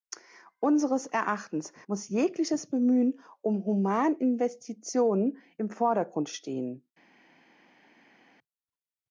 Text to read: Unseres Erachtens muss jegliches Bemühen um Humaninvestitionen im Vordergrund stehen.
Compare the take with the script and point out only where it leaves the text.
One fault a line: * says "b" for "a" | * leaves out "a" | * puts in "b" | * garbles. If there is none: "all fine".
all fine